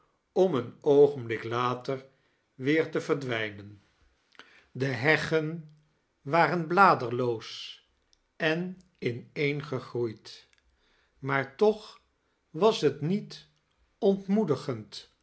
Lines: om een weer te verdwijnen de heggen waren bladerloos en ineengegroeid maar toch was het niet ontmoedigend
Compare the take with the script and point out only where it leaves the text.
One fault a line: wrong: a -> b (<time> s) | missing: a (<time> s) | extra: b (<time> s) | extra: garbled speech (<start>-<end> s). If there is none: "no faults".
extra: oogenblik later (0.8 s)